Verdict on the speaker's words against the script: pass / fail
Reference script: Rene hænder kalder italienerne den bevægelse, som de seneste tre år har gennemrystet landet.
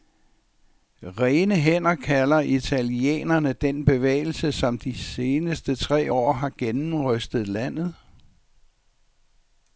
pass